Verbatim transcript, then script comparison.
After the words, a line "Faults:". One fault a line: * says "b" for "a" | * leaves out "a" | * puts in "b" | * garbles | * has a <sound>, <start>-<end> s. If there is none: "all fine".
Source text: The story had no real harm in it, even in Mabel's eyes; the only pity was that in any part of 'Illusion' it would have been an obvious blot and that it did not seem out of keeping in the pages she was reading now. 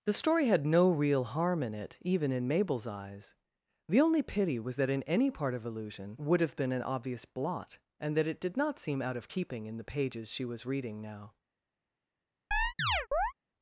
The story had no real harm in it, even in Mabel's eyes; the only pity was that in any part of 'Illusion' would have been an obvious blot and that it did not seem out of keeping in the pages she was reading now.
Faults:
* leaves out "it"
* has a chirp, 12.5-13.3 s